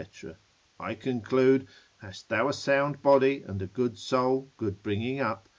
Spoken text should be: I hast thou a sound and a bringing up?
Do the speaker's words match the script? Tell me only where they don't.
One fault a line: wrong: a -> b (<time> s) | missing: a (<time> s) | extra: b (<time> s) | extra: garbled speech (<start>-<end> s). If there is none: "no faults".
extra: conclude (0.9 s)
extra: body (3.0 s)
extra: good soul good (3.7 s)